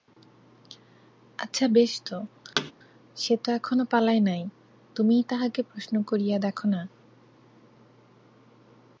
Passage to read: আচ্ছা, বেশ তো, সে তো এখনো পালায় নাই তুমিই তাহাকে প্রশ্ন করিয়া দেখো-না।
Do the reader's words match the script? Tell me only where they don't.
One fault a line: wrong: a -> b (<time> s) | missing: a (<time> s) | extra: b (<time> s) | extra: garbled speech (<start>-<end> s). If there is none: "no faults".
no faults